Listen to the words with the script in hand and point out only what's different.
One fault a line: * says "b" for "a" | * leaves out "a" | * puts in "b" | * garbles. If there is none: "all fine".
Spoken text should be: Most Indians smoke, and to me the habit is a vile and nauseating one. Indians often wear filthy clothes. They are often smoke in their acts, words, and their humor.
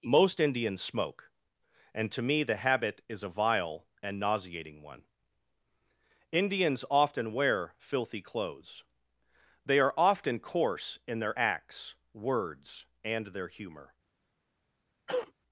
* says "coarse" for "smoke"